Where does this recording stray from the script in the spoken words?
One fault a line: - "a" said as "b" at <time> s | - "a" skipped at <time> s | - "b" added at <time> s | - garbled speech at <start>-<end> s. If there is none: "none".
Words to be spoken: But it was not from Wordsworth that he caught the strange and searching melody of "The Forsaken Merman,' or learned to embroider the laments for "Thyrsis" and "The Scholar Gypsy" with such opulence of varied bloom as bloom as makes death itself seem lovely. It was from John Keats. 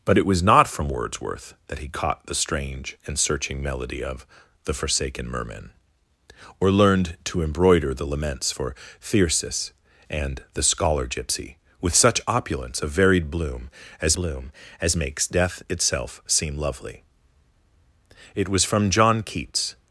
none